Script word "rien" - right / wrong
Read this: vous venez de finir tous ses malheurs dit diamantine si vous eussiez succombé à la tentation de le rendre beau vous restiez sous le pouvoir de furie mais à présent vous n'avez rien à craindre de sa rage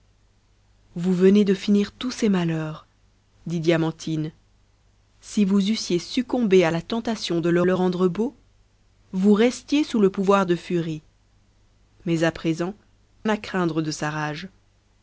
wrong